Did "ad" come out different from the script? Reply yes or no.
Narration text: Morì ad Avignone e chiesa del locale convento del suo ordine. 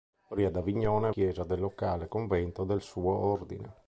no